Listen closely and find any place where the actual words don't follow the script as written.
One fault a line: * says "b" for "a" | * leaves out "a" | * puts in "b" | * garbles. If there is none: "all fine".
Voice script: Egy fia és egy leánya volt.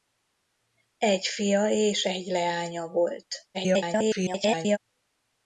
* garbles